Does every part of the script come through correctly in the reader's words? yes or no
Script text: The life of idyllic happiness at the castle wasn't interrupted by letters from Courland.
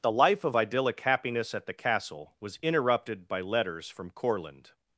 no